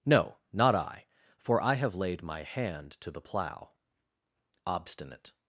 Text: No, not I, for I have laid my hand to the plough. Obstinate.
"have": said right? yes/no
yes